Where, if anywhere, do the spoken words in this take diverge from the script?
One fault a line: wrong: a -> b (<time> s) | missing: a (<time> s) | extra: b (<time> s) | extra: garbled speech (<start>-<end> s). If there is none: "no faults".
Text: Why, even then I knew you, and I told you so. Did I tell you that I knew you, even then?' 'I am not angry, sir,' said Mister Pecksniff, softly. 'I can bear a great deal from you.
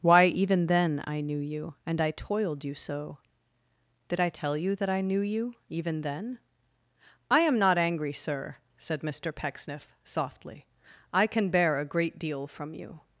wrong: told -> toiled (2.1 s)